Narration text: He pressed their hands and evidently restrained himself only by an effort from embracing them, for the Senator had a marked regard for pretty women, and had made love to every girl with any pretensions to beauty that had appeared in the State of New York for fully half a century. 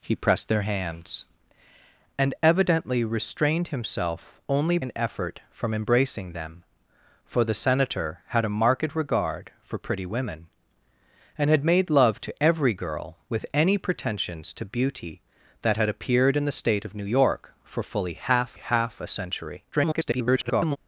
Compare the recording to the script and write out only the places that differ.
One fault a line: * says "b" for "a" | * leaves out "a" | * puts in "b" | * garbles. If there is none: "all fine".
* leaves out "by"
* puts in "half"
* garbles